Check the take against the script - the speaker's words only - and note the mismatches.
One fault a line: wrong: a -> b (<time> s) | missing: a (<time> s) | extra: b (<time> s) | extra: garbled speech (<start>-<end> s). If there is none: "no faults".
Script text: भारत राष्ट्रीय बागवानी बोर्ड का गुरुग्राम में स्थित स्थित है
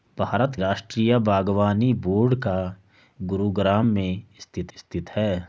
no faults